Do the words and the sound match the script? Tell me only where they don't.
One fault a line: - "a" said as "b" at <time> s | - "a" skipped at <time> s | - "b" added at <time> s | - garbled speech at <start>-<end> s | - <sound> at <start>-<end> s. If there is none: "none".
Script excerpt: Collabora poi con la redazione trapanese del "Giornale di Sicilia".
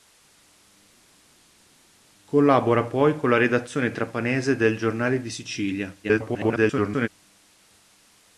- garbled speech at 6.0-7.1 s